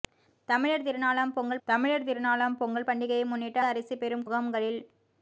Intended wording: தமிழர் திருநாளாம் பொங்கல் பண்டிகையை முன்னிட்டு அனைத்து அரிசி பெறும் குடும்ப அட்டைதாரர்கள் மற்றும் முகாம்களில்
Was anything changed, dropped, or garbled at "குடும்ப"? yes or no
yes